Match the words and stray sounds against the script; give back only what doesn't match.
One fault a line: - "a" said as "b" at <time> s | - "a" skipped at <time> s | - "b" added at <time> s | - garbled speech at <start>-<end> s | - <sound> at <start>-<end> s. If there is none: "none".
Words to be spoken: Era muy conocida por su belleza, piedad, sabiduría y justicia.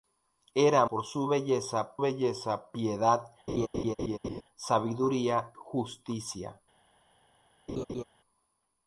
- "muy conocida" skipped at 0.9 s
- "belleza" added at 2.0 s
- laugh at 3.5-4.4 s
- "y" skipped at 5.5 s
- laugh at 7.7-8.0 s